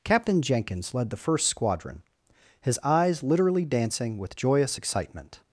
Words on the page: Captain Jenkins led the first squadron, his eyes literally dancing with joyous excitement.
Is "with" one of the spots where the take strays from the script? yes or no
no